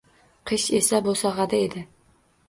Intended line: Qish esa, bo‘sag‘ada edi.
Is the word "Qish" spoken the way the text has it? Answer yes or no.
yes